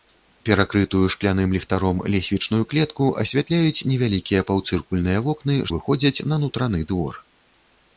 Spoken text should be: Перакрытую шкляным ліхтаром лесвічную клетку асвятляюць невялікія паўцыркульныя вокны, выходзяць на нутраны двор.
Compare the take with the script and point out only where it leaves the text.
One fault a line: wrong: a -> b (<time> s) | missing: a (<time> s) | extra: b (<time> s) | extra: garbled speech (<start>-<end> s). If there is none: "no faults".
no faults